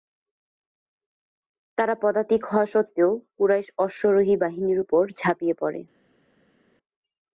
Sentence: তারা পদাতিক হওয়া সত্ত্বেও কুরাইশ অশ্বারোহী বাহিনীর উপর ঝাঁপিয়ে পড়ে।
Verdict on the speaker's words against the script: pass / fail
pass